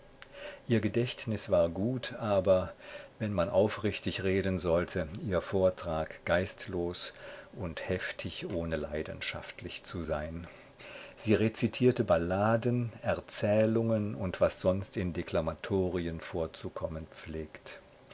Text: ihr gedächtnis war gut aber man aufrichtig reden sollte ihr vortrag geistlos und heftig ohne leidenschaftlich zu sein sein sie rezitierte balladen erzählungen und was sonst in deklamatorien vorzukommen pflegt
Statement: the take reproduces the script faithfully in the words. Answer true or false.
false